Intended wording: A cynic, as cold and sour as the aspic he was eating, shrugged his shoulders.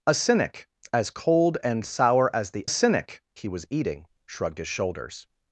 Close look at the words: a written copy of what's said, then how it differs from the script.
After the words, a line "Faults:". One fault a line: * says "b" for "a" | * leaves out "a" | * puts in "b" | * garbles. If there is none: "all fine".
A cynic, as cold and sour as the cynic he was eating, shrugged his shoulders.
Faults:
* says "cynic" for "aspic"